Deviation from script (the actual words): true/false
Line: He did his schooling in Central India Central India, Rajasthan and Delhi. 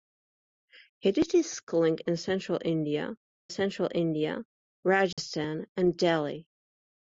false